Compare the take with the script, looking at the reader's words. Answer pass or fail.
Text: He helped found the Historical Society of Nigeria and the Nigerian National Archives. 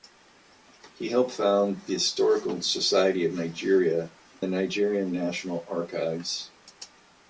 fail